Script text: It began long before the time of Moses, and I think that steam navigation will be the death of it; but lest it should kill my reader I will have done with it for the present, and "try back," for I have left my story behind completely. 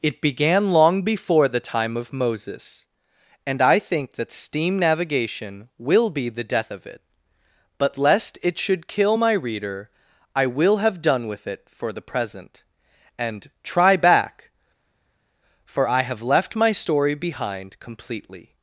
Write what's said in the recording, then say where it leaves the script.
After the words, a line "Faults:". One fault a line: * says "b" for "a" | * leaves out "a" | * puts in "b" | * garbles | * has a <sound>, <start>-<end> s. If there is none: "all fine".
It began long before the time of Moses, and I think that steam navigation will be the death of it; but lest it should kill my reader I will have done with it for the present, and "try back," for I have left my story behind completely.
Faults:
all fine